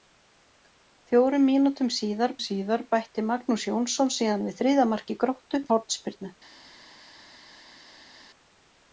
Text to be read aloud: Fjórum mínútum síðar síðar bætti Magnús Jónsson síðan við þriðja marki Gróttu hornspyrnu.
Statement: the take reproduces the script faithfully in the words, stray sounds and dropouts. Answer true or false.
true